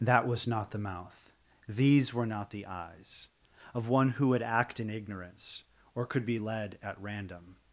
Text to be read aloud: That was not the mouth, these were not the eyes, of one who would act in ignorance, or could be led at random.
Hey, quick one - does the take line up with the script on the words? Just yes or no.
yes